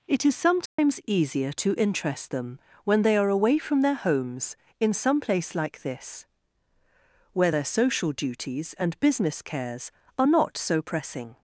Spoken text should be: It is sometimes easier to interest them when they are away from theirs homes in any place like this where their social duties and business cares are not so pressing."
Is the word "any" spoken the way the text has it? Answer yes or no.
no